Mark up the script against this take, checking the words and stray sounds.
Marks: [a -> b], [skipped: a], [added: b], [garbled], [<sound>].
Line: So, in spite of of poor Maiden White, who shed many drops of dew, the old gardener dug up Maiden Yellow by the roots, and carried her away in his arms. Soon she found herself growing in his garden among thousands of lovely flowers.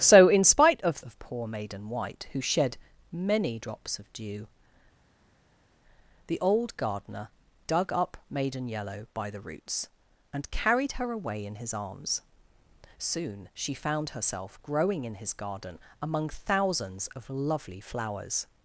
So, in spite of of poor Maiden White, who shed many drops of dew, the old gardener dug up Maiden Yellow by the roots, and carried her away in his arms. Soon she found herself growing in his garden among thousands of lovely flowers.